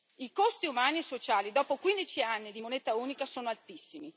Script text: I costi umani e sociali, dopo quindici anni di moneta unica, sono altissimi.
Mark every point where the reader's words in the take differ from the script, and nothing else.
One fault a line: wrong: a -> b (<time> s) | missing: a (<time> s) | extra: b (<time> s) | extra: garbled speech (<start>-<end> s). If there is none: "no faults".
no faults